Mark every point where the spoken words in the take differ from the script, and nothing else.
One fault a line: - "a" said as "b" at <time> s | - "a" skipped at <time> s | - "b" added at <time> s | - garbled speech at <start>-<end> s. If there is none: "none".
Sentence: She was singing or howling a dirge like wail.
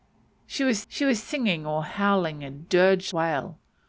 - "she was" added at 0.9 s
- "like" skipped at 3.1 s